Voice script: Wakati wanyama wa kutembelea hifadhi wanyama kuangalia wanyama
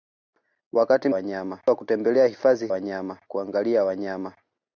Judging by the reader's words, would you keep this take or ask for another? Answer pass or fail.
pass